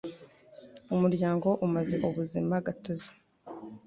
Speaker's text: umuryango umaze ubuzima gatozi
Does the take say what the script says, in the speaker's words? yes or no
yes